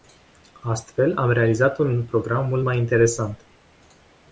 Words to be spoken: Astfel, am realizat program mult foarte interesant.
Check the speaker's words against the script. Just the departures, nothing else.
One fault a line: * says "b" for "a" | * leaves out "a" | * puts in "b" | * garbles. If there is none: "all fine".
* puts in "un"
* says "mai" for "foarte"